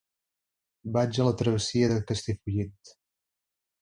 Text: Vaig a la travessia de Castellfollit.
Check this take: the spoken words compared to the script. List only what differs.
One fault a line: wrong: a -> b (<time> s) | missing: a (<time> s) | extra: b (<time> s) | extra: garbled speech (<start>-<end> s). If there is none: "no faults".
no faults